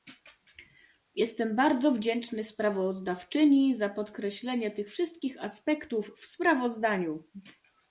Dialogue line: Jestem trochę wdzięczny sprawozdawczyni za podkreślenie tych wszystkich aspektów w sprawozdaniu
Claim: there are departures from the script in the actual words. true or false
true